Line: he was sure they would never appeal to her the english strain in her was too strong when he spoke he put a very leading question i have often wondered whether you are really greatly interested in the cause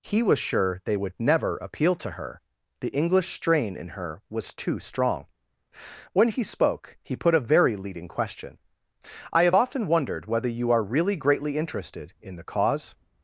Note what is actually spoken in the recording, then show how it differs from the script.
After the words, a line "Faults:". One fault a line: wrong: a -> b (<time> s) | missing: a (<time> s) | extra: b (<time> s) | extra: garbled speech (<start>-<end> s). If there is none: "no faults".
he was sure they would never appeal to her the english strain in her was too strong when he spoke he put a very leading question i have often wondered whether you are really greatly interested in the cause
Faults:
no faults